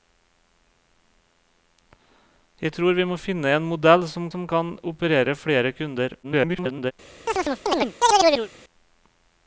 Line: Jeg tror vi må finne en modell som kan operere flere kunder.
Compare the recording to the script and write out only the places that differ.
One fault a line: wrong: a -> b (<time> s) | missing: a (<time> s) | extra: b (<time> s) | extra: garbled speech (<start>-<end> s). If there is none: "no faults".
extra: som (4.3 s)
extra: garbled speech (6.2-6.9 s)